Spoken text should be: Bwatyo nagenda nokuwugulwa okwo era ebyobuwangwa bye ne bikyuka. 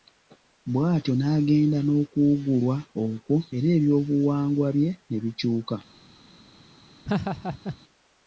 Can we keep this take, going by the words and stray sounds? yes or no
no